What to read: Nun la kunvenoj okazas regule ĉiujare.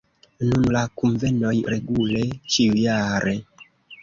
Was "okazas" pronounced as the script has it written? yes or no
no